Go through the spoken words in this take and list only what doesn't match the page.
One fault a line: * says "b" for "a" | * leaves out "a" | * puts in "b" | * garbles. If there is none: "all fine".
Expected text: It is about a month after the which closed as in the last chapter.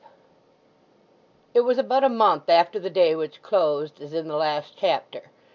* says "was" for "is"
* puts in "day"